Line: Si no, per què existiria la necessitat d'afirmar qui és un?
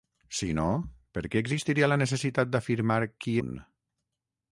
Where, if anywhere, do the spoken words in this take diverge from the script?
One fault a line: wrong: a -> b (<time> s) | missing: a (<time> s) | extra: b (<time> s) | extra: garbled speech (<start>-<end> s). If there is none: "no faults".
missing: és (3.4 s)